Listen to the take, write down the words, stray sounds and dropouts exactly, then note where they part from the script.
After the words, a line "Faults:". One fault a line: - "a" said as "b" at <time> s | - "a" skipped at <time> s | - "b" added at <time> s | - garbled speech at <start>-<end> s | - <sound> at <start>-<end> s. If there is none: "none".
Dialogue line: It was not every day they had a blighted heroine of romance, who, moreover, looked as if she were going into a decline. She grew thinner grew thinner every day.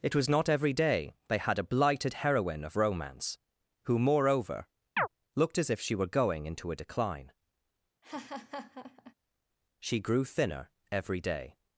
It was not every day they had a blighted heroine of romance, who, moreover, looked as if she were going into a decline. She grew thinner every day.
Faults:
- chirp at 5.0-5.1 s
- laugh at 8.0-9.1 s
- "grew thinner" skipped at 10.7 s